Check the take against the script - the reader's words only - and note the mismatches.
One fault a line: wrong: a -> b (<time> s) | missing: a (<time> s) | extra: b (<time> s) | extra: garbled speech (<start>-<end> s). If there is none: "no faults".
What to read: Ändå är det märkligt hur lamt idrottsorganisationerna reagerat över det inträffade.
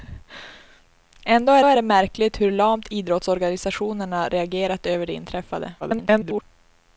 extra: är (1.6 s)
extra: garbled speech (5.8-6.4 s)